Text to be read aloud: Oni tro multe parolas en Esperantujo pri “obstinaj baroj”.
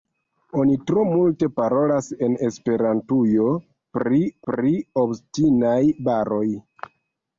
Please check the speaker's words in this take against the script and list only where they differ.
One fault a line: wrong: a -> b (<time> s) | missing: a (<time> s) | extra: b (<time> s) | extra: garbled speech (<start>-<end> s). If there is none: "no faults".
extra: pri (4.5 s)